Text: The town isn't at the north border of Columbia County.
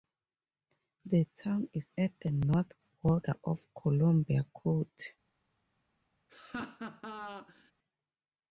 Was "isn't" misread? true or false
true